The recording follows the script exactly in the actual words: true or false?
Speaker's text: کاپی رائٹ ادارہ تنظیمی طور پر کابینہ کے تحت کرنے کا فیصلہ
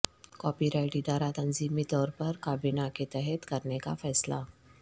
true